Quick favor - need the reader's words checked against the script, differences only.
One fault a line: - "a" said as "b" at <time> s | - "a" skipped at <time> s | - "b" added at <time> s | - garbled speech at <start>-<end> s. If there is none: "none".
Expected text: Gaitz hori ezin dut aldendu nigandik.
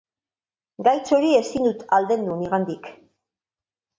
none